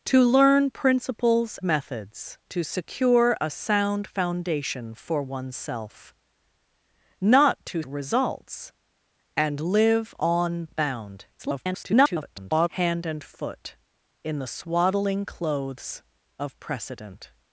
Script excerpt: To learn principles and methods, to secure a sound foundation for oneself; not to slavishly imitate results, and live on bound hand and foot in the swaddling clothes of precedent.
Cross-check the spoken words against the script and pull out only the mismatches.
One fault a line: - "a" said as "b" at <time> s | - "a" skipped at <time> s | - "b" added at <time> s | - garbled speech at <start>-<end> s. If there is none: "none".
- "and" skipped at 1.6 s
- "slavishly imitate" skipped at 7.8 s
- garbled speech at 11.4-12.7 s